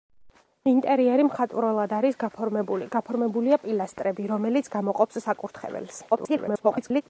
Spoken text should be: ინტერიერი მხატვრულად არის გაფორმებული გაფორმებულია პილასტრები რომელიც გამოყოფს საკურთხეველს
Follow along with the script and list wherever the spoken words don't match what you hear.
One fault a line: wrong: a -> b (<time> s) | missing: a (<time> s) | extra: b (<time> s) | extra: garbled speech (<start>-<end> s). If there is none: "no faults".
extra: garbled speech (6.1-7.0 s)